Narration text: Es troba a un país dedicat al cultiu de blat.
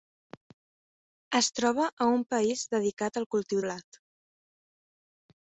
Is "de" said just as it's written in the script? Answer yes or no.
no